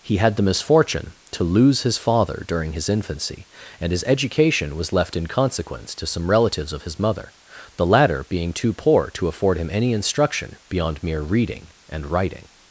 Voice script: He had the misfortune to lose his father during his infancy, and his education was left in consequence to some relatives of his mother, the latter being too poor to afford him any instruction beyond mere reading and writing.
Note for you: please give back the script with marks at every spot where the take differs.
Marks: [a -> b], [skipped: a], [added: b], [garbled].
He had the misfortune to lose his father during his infancy, and his education was left in consequence to some relatives of his mother, the latter being too poor to afford him any instruction beyond mere reading and writing.